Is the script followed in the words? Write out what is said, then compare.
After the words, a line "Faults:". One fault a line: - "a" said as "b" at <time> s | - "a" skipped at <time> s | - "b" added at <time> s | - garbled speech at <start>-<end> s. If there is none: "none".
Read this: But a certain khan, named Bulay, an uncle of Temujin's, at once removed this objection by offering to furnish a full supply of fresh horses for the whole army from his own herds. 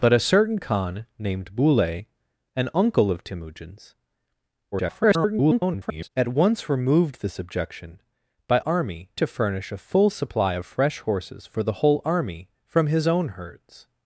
But a certain khan, named Bulay, an uncle of Temujin's, [garbled] at once removed this objection by army to furnish a full supply of fresh horses for the whole army from his own herds.
Faults:
- garbled speech at 4.7-6.1 s
- "offering" said as "army" at 8.6 s